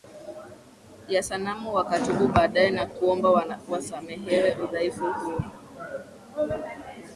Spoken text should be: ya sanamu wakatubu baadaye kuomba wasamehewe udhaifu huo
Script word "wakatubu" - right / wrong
right